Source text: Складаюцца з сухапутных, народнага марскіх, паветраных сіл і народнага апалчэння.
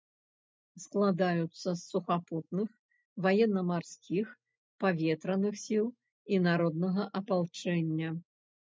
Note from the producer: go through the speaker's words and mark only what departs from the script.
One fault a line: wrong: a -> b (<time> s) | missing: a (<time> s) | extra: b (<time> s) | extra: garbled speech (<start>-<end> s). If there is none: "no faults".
wrong: народнага -> ваенна (3.3 s)